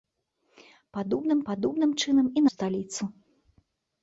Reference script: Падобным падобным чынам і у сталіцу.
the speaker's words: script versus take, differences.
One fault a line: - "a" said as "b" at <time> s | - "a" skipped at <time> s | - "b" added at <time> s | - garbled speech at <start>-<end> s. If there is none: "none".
none